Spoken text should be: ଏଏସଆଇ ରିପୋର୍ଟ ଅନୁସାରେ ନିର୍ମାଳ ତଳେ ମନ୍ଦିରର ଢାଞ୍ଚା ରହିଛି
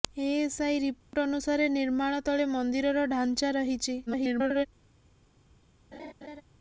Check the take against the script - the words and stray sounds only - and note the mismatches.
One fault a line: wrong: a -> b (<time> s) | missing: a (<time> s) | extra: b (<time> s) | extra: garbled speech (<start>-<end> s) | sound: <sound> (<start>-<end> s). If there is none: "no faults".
sound: dropout (1.0-1.1 s)
extra: garbled speech (4.1-4.7 s)
sound: laugh (5.9-6.4 s)